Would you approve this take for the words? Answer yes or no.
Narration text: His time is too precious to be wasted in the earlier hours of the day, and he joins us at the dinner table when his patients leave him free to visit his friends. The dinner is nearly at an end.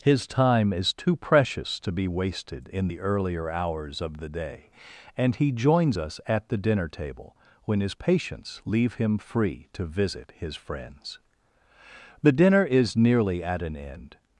yes